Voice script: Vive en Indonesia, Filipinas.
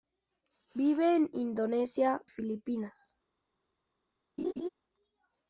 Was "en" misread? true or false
false